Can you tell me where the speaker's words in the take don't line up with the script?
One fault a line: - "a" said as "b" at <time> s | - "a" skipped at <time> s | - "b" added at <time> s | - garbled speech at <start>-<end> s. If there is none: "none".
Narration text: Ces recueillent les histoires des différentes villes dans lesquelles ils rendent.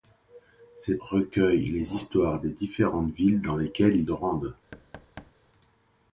none